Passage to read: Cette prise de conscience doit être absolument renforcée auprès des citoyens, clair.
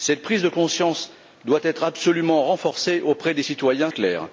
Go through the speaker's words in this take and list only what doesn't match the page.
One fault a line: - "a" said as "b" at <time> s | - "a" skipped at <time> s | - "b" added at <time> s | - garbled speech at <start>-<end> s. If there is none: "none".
none